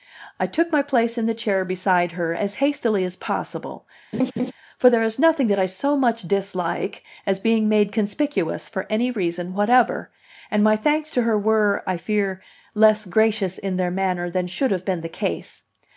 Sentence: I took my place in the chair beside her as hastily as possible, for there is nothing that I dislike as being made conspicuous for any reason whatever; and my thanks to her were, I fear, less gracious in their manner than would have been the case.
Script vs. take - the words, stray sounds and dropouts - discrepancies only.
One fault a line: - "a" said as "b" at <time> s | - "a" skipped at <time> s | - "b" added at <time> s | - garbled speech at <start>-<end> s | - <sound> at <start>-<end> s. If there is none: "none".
- laugh at 4.1-4.5 s
- "so much" added at 5.6 s
- "would" said as "should" at 14.5 s